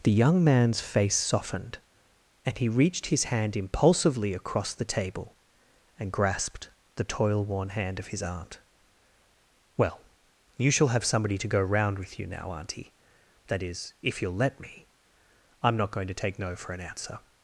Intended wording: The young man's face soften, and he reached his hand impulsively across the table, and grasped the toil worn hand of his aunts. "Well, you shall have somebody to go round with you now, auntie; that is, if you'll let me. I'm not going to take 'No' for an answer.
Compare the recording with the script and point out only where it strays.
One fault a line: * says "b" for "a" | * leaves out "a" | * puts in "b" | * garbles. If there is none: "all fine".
* says "softened" for "soften"
* says "aunt" for "aunts"